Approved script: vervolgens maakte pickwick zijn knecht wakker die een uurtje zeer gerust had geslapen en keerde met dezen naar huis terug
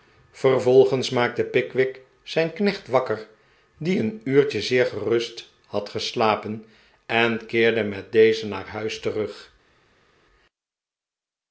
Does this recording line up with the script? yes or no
yes